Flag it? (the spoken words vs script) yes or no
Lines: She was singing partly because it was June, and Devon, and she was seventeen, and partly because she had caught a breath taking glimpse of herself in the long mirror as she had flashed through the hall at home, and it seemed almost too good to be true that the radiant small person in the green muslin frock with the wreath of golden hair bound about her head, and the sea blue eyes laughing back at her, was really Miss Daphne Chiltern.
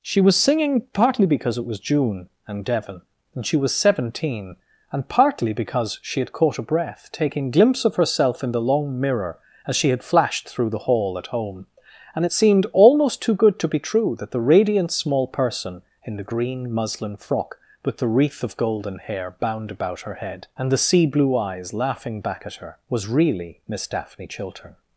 no